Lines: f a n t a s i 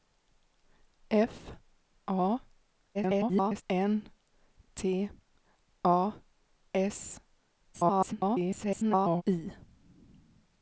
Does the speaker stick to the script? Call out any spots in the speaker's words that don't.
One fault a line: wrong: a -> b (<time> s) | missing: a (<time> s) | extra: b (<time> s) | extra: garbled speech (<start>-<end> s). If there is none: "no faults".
extra: garbled speech (2.9-3.6 s)
extra: garbled speech (7.7-9.2 s)